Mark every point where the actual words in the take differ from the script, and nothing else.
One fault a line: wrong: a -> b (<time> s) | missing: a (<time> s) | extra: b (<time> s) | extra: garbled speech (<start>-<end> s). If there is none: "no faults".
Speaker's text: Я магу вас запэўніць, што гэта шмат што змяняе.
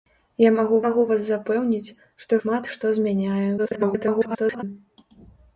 extra: магу (0.9 s)
missing: гэта (2.4 s)
extra: garbled speech (3.6-4.6 s)